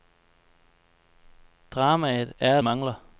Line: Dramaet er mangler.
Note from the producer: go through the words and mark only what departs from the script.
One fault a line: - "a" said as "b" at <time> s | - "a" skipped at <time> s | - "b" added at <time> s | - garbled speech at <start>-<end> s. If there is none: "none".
none